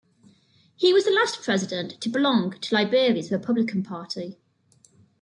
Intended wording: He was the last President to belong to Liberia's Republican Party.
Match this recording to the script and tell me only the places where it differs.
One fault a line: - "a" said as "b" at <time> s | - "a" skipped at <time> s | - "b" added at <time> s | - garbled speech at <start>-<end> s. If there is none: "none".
none